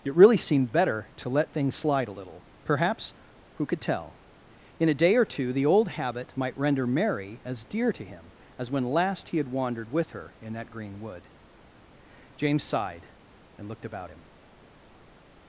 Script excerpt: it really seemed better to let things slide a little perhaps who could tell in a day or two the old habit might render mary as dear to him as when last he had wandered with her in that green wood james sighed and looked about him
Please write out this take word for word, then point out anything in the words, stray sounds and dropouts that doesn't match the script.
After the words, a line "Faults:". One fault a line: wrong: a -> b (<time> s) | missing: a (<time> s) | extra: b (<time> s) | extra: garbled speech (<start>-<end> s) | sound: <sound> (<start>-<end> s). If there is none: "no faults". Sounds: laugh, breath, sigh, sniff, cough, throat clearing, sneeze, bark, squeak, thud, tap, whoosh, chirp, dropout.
it really seemed better to let things slide a little perhaps who could tell in a day or two the old habit might render mary as dear to him as when last he had wandered with her in that green wood james sighed and looked about him
Faults:
no faults